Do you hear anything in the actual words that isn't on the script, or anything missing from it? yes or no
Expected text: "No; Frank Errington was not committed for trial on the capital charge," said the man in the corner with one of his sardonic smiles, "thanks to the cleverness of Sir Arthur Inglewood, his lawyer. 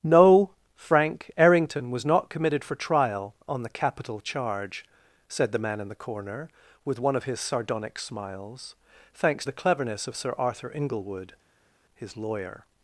yes